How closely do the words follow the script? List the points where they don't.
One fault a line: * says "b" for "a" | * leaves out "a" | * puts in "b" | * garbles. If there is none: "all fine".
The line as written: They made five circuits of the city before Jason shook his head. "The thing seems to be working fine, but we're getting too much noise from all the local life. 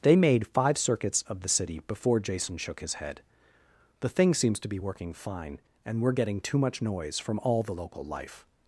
* says "and" for "but"